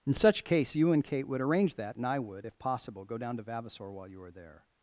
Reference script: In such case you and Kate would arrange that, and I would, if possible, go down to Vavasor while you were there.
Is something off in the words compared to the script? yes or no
no